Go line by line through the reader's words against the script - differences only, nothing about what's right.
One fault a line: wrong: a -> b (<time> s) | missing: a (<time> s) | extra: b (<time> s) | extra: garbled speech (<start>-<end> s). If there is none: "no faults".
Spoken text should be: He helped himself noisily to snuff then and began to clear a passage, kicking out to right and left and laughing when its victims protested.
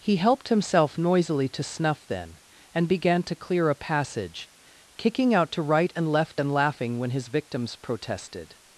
wrong: its -> his (7.1 s)